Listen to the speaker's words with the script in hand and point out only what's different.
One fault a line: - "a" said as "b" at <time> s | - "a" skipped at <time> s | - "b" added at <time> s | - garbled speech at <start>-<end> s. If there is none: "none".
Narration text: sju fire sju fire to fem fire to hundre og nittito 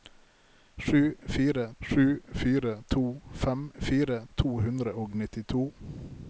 none